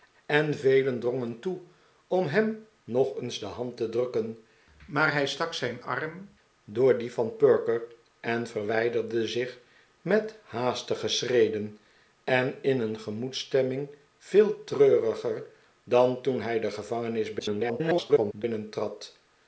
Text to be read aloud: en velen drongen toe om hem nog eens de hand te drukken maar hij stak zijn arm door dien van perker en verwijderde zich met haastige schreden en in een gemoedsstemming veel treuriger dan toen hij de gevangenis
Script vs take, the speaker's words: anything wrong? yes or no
yes